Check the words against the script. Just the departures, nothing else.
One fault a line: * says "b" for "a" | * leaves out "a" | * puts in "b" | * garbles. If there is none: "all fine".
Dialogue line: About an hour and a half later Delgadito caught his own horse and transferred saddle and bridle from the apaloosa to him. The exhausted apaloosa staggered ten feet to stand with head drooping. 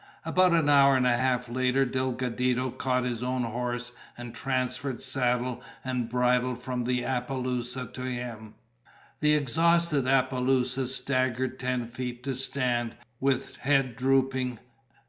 all fine